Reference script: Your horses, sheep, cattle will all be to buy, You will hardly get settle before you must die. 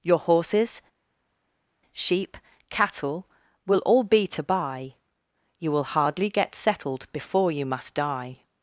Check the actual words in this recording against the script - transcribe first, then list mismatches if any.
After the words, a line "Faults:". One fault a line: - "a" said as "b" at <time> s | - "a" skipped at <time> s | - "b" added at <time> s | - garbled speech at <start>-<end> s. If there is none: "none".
Your horses, sheep, cattle will all be to buy, You will hardly get settled before you must die.
Faults:
- "settle" said as "settled" at 6.5 s